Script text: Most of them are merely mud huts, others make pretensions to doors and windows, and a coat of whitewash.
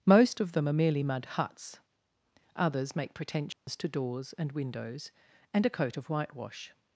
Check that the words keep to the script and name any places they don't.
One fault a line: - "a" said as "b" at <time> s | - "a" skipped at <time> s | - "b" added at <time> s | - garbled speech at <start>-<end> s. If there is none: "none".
none